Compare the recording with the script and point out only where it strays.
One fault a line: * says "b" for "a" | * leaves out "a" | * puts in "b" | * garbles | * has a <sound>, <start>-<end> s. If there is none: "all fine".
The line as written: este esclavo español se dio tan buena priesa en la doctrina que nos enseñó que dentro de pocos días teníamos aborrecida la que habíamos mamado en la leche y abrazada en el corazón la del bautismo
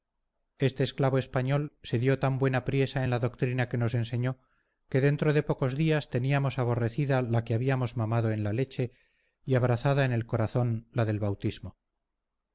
all fine